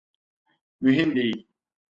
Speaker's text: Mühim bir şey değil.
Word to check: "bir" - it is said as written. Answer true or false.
false